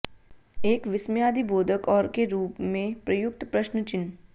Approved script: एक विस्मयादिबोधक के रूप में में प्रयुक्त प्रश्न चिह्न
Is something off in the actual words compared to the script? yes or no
yes